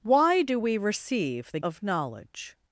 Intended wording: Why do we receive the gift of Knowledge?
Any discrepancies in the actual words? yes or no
yes